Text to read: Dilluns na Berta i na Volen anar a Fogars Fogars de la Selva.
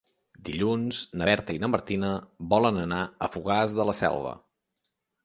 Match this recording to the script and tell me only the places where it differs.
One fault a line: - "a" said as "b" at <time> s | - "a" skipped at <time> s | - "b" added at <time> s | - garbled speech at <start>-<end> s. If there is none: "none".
- "Martina" added at 1.7 s
- "Fogars" skipped at 3.8 s